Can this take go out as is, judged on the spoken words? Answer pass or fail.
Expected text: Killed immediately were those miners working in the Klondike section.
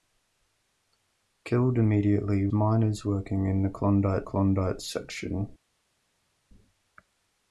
fail